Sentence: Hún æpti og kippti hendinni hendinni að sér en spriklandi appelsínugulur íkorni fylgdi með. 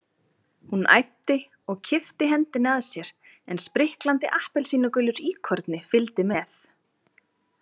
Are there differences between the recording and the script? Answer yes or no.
yes